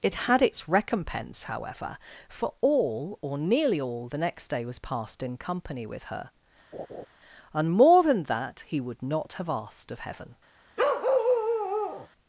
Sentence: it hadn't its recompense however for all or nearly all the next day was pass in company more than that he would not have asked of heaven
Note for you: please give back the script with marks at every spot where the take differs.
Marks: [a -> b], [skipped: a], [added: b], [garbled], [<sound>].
it [hadn't -> had] its recompense however for all or nearly all the next day was [pass -> passed] in company [added: with her and] [laugh] more than that he would not have asked of heaven [bark]